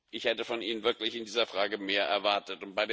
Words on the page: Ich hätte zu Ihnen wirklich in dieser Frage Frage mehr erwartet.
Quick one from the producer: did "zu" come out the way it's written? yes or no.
no